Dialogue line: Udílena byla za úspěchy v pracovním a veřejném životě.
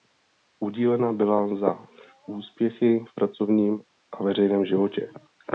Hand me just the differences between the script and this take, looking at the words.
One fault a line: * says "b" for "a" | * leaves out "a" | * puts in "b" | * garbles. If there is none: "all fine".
all fine